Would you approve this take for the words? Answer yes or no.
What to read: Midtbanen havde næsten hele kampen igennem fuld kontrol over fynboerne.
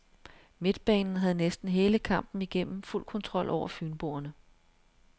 yes